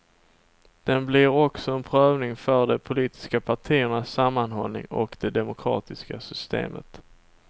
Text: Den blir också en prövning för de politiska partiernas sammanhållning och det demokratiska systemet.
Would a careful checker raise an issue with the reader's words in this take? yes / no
no